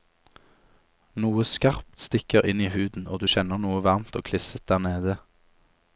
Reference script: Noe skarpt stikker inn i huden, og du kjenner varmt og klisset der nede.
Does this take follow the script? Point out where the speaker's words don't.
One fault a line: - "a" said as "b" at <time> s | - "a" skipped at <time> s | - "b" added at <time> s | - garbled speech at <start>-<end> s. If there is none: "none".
- "noe" added at 3.6 s